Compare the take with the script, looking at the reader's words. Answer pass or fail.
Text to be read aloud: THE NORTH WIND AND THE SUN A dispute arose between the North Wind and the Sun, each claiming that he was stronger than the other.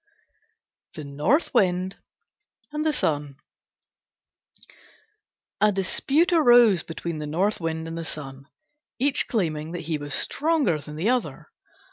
pass